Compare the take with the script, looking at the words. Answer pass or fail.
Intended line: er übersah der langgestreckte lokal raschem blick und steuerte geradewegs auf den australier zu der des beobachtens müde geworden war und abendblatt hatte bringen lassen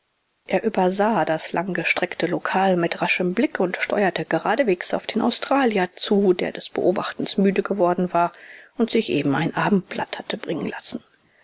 fail